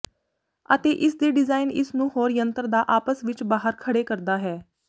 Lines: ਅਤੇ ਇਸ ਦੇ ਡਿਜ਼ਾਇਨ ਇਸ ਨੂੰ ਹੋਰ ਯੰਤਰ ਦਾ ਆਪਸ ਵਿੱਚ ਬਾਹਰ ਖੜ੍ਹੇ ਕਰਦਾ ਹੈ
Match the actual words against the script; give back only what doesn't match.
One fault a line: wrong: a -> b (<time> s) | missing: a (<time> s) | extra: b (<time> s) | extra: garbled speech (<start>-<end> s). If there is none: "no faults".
no faults